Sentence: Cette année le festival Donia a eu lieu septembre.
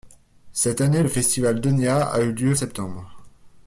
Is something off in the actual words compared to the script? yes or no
no